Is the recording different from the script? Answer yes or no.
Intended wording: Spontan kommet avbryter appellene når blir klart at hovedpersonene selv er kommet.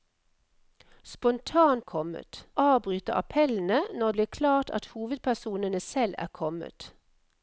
no